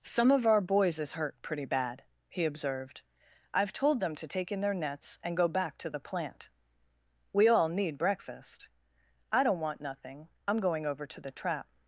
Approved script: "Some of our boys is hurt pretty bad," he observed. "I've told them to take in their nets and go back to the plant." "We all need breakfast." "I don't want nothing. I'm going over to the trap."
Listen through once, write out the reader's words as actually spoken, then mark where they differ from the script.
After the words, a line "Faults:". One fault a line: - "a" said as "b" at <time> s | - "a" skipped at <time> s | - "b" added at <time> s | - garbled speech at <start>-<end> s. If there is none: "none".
"Some of our boys is hurt pretty bad," he observed. "I've told them to take in their nets and go back to the plant." "We all need breakfast." "I don't want nothing. I'm going over to the trap."
Faults:
none